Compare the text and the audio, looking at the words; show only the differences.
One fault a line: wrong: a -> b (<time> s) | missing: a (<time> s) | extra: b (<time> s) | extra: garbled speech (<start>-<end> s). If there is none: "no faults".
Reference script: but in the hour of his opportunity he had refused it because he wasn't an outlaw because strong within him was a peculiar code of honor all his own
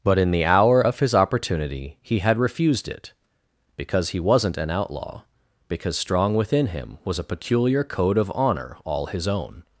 no faults